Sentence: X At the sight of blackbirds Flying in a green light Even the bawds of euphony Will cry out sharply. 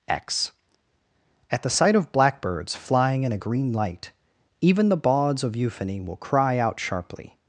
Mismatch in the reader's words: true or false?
false